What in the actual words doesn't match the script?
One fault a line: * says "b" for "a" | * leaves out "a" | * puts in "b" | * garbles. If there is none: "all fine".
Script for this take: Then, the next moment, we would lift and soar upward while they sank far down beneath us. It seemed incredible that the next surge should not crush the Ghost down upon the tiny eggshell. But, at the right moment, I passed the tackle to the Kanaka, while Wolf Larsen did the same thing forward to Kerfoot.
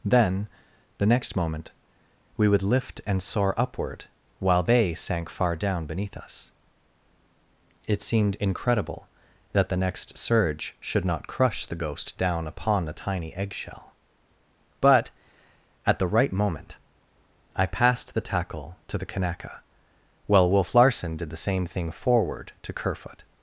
all fine